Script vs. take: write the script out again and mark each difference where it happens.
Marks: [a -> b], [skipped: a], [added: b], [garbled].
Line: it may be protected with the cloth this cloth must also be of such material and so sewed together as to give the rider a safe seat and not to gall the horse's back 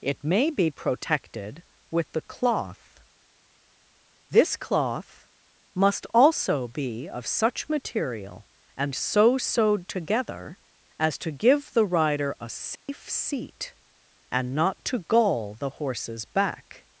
it may be protected with the cloth this cloth must also be of such material and so sewed together as to give the rider a safe seat and not to gall the horse's back